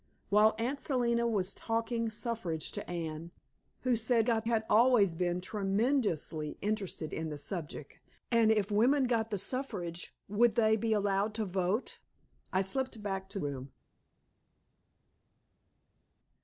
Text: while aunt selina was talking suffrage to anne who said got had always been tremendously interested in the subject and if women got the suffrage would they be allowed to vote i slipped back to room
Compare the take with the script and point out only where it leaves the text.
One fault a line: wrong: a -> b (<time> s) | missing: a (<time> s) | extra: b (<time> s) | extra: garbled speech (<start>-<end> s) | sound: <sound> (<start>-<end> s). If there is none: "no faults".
no faults